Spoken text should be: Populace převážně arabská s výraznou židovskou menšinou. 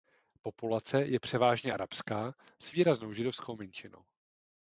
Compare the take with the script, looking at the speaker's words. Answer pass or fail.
fail